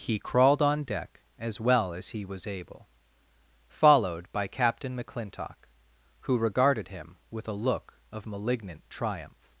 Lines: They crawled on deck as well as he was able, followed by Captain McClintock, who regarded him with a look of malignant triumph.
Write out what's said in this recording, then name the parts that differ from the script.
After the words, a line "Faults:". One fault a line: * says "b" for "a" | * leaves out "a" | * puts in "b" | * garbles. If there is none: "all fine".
He crawled on deck as well as he was able, followed by Captain McClintock, who regarded him with a look of malignant triumph.
Faults:
* says "He" for "They"